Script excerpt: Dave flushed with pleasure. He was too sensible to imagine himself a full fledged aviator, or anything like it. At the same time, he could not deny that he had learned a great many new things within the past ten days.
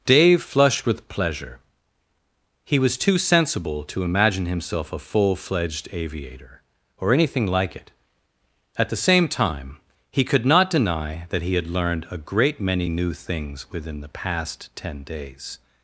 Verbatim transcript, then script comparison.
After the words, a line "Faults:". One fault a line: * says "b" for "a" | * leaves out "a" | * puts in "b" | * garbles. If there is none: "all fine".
Dave flushed with pleasure. He was too sensible to imagine himself a full fledged aviator, or anything like it. At the same time, he could not deny that he had learned a great many new things within the past ten days.
Faults:
all fine